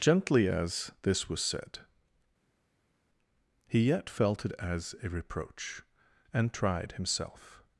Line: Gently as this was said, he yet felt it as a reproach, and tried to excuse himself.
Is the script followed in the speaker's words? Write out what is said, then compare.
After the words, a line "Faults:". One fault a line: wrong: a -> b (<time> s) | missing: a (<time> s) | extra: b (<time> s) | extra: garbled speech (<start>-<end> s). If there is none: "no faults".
Gently as this was said, he yet felt it as a reproach, and tried himself.
Faults:
missing: to excuse (6.9 s)